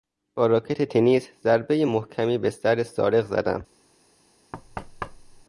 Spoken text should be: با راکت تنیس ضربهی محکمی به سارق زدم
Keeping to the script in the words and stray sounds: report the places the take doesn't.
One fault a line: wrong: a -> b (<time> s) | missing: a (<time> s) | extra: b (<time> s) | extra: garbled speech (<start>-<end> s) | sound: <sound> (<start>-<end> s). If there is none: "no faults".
extra: سر (2.5 s)
sound: thud (4.5-5.4 s)